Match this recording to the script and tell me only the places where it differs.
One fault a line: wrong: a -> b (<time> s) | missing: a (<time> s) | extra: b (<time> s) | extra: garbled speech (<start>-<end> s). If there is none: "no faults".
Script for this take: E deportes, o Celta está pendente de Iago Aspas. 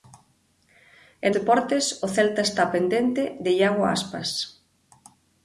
no faults